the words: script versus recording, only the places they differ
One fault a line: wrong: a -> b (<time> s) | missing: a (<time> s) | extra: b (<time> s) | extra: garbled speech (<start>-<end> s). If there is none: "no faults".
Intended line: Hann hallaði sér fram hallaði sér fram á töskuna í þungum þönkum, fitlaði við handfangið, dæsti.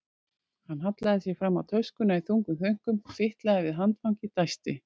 missing: hallaði sér fram (1.6 s)